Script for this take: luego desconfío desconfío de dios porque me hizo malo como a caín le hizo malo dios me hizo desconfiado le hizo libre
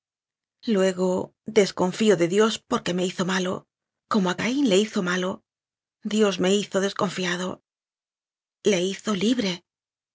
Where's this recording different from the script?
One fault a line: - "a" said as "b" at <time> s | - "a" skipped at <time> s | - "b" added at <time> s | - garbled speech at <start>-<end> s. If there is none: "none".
- "desconfío" skipped at 2.2 s